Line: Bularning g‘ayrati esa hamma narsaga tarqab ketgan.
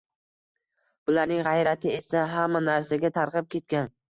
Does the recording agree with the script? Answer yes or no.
yes